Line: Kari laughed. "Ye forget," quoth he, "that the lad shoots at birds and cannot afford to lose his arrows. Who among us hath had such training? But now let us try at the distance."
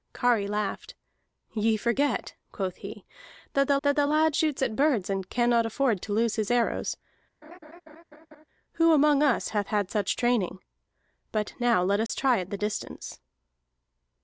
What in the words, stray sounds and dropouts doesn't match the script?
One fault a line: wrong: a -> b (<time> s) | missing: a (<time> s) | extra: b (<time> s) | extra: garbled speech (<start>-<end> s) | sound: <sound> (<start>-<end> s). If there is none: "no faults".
extra: that the (3.8 s)
sound: laugh (7.4-8.4 s)
sound: dropout (12.1-12.1 s)